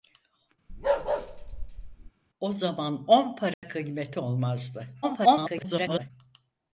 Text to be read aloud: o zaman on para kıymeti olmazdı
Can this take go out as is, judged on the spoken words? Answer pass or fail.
fail